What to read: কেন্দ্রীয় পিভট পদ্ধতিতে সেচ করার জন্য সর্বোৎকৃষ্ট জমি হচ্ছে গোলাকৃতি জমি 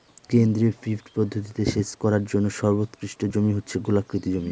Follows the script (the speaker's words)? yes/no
yes